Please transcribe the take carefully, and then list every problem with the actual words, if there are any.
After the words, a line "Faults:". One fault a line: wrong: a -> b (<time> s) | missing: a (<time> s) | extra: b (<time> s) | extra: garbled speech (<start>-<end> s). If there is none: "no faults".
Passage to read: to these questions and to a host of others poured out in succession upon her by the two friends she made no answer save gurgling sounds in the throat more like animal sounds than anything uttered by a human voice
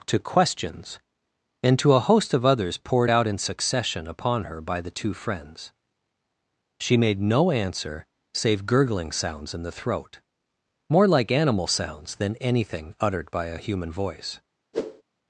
to questions and to a host of others poured out in succession upon her by the two friends she made no answer save gurgling sounds in the throat more like animal sounds than anything uttered by a human voice
Faults:
missing: these (0.2 s)